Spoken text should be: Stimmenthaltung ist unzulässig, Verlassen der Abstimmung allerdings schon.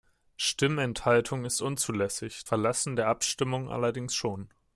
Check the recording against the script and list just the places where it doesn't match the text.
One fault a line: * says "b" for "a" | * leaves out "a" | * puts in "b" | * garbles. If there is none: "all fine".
all fine